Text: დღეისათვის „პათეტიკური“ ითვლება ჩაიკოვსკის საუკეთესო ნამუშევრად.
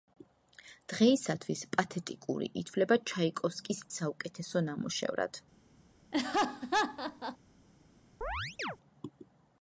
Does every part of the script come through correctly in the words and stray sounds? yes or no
no